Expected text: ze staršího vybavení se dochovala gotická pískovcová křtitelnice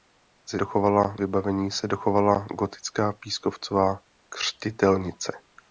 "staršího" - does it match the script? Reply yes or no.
no